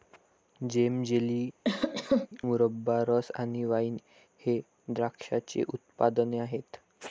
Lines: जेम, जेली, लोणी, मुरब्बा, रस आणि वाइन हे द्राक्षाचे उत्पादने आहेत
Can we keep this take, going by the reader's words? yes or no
no